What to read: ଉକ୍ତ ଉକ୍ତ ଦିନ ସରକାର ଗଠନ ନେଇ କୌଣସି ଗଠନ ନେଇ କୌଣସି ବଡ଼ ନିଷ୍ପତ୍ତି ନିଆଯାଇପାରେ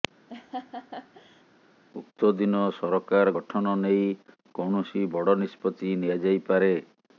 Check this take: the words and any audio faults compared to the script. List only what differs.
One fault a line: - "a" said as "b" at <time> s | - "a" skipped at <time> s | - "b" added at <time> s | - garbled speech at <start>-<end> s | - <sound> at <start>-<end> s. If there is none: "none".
- laugh at 0.3-1.4 s
- "ଉକ୍ତ" skipped at 2.3 s
- "ଗଠନ ନେଇ କୌଣସି" skipped at 5.0 s